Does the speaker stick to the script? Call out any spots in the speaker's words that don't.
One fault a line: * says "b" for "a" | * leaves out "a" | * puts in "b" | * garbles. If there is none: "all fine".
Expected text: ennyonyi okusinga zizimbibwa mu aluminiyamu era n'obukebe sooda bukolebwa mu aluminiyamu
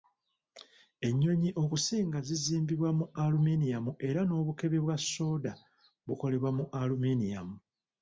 * puts in "bwa"